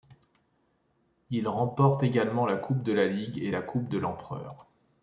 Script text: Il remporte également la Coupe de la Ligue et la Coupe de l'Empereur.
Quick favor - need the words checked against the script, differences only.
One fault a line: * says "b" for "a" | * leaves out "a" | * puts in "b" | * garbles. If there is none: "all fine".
all fine